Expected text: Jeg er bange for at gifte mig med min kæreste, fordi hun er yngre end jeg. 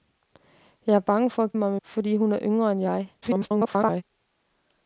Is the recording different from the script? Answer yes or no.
yes